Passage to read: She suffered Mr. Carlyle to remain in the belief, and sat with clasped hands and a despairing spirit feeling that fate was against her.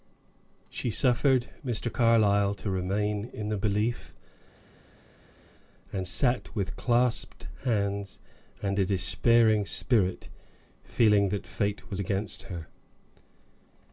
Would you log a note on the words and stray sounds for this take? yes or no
no